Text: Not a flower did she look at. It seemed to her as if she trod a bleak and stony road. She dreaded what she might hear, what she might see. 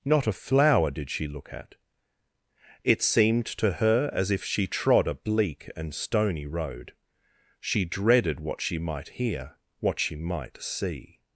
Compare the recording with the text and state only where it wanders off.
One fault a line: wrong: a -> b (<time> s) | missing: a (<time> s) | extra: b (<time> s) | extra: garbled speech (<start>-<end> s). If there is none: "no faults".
no faults